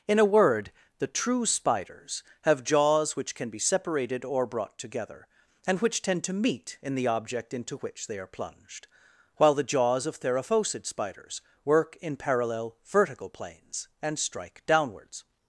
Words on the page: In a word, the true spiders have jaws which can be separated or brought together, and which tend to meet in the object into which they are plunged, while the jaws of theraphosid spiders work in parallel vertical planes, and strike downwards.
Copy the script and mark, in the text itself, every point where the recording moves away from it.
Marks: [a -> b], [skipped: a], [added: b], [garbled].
In a word, the true spiders have jaws which can be separated or brought together, and which tend to meet in the object into which they are plunged, while the jaws of theraphosid spiders work in parallel vertical planes, and strike downwards.